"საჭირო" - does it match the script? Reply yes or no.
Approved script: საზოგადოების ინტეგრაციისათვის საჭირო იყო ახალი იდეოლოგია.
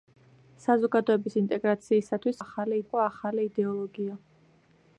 no